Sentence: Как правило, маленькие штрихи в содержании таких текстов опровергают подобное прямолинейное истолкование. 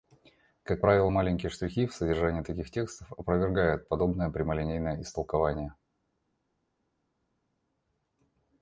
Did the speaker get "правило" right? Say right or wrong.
right